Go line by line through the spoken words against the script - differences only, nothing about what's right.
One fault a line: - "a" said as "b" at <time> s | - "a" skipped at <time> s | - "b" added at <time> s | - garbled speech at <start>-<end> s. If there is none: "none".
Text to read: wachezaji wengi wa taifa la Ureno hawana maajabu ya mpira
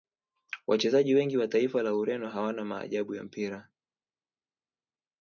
none